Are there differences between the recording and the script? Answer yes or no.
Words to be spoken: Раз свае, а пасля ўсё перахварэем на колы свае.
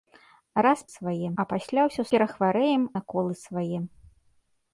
no